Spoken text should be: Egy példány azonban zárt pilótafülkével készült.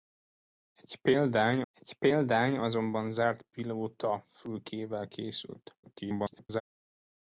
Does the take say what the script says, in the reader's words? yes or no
no